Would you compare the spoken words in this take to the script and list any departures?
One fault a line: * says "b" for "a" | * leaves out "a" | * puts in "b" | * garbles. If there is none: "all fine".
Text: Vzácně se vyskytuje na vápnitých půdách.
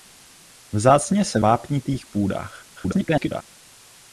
* leaves out "vyskytuje na"
* garbles